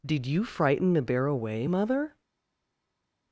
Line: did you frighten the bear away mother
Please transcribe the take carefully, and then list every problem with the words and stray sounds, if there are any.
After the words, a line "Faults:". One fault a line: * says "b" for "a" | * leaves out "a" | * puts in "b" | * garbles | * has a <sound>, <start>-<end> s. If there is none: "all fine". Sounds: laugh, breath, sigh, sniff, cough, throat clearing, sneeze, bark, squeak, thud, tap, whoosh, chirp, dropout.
did you frighten the bear away mother
Faults:
all fine